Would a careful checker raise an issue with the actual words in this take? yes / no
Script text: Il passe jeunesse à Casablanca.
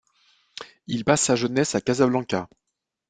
yes